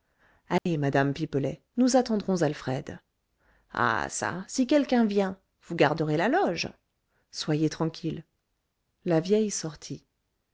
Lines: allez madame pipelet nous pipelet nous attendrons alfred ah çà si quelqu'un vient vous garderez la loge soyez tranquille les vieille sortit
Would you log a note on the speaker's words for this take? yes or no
yes